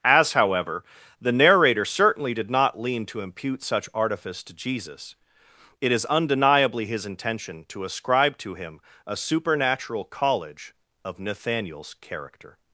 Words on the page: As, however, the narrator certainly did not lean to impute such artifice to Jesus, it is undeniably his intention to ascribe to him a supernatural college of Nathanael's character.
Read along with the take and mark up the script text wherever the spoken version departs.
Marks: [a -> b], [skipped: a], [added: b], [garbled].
As, however, the narrator certainly did not lean to impute such artifice to Jesus, it is undeniably his intention to ascribe to him a supernatural college of Nathanael's character.